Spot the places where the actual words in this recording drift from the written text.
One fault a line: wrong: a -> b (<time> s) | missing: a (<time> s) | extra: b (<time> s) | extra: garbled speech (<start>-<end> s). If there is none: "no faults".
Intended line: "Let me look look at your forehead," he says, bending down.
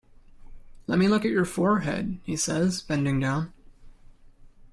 missing: look (1.3 s)